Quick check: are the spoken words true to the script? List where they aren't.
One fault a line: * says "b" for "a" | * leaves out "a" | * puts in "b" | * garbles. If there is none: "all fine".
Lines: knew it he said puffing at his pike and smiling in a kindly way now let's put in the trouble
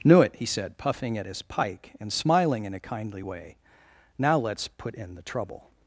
all fine